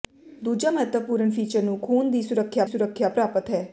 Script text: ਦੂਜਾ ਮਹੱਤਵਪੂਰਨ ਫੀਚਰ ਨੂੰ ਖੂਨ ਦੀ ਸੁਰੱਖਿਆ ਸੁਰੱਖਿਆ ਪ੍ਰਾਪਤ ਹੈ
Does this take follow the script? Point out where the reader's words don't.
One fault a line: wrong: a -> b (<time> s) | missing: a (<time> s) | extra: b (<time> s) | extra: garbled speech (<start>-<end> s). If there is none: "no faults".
no faults